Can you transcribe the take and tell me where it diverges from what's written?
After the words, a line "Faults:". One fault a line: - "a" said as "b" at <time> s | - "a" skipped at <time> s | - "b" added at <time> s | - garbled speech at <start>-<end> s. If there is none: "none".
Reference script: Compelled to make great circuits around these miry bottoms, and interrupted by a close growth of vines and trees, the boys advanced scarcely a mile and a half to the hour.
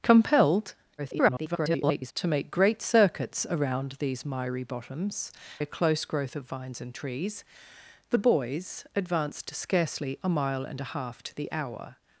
Compelled [garbled] to make great circuits around these miry bottoms, a close growth of vines and trees, the boys advanced scarcely a mile and a half to the hour.
Faults:
- garbled speech at 1.0-2.1 s
- "and interrupted by" skipped at 5.3 s